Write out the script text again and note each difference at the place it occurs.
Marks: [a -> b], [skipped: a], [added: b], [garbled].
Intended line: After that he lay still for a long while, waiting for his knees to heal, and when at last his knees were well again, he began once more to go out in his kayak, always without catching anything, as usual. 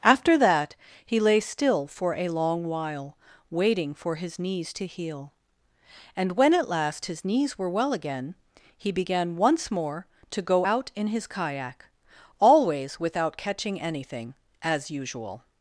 After that he lay still for a long while, waiting for his knees to heal, and when at last his knees were well again, he began once more to go out in his kayak, always without catching anything, as usual.